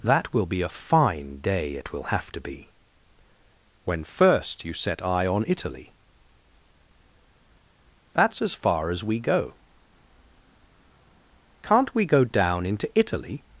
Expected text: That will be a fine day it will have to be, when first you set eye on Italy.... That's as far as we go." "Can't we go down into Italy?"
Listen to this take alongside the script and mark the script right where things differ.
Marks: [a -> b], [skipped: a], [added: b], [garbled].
That will be a fine day it will have to be, when first you set eye on Italy.... That's as far as we go." "Can't we go down into Italy?"